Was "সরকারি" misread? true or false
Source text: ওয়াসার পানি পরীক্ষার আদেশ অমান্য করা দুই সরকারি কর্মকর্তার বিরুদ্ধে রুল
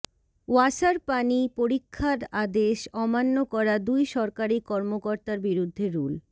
false